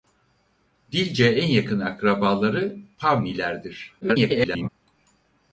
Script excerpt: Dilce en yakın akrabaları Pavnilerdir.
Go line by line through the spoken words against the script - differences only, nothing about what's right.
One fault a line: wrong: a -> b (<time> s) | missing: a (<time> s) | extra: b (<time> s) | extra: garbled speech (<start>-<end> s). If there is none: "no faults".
extra: garbled speech (4.0-4.7 s)